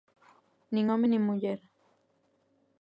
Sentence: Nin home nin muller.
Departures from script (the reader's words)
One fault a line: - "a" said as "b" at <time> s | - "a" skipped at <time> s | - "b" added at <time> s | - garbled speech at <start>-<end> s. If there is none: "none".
none